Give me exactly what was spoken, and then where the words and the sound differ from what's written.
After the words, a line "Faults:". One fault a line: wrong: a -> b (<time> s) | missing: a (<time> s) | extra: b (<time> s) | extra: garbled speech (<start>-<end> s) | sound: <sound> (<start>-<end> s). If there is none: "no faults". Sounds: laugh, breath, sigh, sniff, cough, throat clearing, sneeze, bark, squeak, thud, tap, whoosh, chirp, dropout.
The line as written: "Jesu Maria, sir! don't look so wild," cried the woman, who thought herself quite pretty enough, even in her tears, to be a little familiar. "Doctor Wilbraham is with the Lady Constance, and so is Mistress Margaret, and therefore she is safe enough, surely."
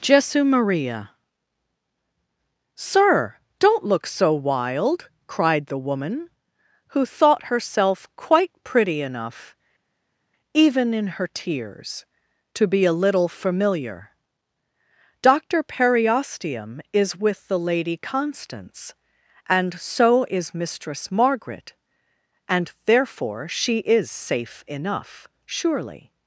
"Jesu Maria, sir! don't look so wild," cried the woman, who thought herself quite pretty enough, even in her tears, to be a little familiar. "Doctor Periosteum is with the Lady Constance, and so is Mistress Margaret, and therefore she is safe enough, surely."
Faults:
wrong: Wilbraham -> Periosteum (15.6 s)